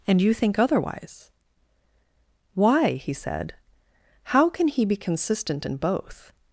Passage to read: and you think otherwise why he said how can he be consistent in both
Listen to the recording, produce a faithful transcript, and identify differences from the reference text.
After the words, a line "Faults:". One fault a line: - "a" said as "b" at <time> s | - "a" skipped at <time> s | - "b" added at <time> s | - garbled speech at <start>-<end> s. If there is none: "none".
and you think otherwise why he said how can he be consistent in both
Faults:
none